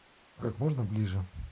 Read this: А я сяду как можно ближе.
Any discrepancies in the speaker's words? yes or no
yes